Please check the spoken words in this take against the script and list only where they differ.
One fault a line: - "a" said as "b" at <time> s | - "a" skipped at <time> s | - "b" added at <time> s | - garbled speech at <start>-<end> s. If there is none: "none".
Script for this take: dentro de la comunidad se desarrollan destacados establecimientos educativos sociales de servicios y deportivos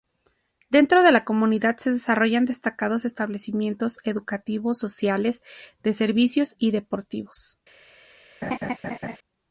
none